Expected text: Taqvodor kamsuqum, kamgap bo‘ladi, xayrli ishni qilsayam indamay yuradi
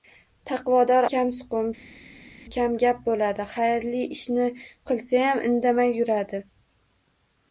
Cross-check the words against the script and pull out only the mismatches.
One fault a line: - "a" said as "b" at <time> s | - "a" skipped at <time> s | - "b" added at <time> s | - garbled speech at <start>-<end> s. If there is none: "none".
none